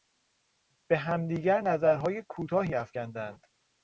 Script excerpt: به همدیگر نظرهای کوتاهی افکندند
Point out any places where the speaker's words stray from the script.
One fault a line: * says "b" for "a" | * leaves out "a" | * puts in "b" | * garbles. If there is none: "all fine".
all fine